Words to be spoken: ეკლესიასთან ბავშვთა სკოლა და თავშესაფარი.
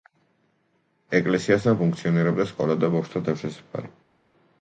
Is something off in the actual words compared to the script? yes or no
yes